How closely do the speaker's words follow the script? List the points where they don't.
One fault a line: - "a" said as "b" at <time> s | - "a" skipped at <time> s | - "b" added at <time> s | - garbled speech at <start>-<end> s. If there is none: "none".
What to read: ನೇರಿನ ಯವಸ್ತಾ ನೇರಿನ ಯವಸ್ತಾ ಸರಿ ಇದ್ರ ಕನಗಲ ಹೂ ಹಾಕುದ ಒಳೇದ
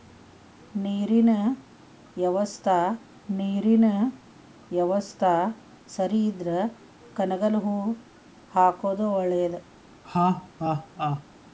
none